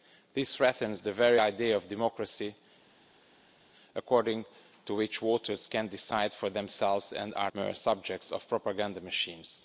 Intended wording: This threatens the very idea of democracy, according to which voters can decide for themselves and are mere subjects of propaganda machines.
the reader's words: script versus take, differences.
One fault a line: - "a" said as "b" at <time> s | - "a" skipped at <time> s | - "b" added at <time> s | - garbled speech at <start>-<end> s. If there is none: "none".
none